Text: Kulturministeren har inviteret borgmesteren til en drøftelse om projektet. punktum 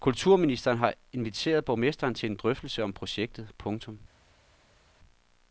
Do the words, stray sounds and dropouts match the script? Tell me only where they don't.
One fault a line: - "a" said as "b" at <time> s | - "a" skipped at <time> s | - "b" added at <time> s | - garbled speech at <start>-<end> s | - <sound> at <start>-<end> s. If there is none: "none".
none